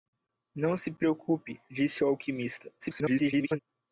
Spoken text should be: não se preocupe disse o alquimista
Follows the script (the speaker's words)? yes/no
no